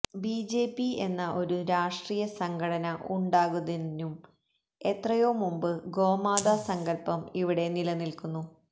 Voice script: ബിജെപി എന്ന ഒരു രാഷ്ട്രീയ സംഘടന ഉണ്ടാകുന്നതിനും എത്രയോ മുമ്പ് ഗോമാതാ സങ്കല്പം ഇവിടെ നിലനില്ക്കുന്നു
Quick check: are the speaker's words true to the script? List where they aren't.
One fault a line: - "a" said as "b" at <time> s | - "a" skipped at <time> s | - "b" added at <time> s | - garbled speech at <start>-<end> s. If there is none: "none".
none